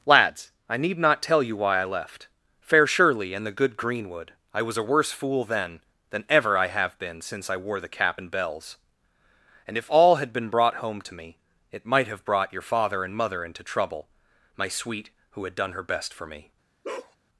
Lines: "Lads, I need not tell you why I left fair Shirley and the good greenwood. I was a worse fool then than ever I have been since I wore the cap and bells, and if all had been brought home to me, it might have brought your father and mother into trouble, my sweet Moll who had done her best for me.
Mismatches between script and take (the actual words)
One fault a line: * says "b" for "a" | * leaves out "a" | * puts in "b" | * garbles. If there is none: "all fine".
* leaves out "Moll"